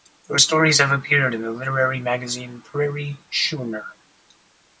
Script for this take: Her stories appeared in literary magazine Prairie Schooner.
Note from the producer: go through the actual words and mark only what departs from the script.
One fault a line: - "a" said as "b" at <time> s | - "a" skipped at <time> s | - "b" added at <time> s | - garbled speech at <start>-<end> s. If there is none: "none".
- "have" added at 0.8 s
- "the" added at 1.4 s